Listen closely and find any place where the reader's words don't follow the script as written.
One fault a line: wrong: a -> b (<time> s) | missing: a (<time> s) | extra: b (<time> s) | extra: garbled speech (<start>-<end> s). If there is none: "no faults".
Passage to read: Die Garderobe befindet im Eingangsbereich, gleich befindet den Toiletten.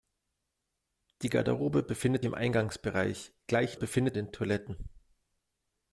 no faults